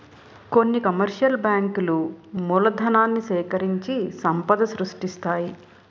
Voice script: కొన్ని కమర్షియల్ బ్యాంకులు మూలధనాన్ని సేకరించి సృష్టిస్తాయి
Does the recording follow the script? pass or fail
fail